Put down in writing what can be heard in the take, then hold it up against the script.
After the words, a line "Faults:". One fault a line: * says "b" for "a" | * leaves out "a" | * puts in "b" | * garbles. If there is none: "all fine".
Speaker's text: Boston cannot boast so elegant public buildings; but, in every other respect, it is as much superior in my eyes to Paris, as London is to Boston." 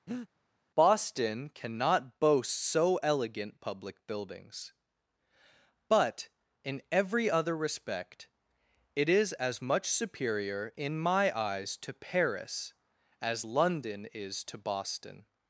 Boston cannot boast so elegant public buildings; but, in every other respect, it is as much superior in my eyes to Paris, as London is to Boston."
Faults:
all fine